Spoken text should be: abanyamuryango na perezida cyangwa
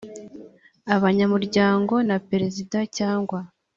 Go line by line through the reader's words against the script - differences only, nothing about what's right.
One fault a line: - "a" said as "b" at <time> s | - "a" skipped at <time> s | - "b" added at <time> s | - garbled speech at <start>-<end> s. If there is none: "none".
none